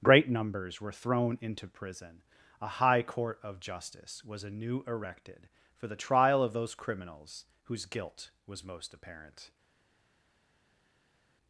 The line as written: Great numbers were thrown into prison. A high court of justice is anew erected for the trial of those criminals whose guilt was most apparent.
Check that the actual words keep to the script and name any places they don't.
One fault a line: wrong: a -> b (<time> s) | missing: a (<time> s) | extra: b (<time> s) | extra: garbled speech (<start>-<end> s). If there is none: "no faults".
wrong: is -> was (4.2 s)